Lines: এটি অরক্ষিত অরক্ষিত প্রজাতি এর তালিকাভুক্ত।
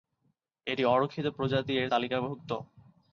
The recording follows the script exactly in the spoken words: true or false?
false